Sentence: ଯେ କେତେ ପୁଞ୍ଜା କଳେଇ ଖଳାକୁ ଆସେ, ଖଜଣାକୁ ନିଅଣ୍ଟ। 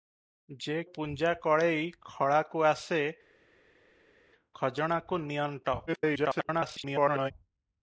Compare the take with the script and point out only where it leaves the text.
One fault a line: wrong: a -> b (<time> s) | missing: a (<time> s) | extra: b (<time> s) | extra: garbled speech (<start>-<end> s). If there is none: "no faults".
missing: କେତେ (0.8 s)
extra: garbled speech (5.9-7.3 s)